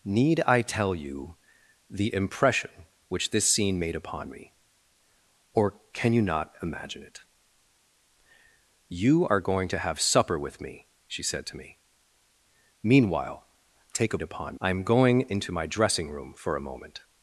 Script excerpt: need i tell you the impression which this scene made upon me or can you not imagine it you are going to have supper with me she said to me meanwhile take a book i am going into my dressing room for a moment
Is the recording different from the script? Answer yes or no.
yes